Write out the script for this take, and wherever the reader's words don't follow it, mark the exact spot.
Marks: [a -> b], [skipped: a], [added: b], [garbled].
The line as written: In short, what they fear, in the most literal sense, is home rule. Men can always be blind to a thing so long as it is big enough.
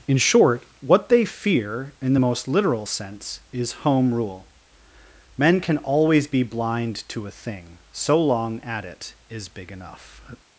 In short, what they fear, in the most literal sense, is home rule. Men can always be blind to a thing so long [as -> at] it is big enough.